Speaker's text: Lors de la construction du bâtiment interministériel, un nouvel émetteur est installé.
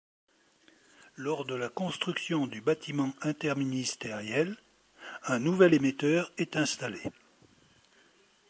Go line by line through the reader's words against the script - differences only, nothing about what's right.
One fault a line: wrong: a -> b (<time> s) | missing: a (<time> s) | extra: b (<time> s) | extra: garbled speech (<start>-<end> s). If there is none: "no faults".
no faults